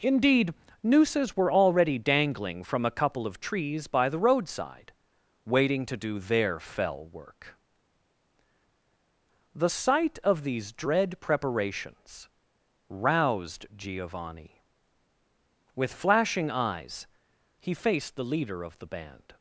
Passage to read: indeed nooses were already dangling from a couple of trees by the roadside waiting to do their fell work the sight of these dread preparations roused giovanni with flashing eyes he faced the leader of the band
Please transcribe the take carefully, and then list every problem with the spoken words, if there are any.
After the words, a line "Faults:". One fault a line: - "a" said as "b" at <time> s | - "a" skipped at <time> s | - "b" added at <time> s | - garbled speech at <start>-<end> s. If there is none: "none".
indeed nooses were already dangling from a couple of trees by the roadside waiting to do their fell work the sight of these dread preparations roused giovanni with flashing eyes he faced the leader of the band
Faults:
none